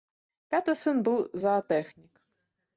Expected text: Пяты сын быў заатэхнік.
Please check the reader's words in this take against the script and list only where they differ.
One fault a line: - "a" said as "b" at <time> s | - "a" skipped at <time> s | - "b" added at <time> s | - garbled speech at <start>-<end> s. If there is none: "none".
none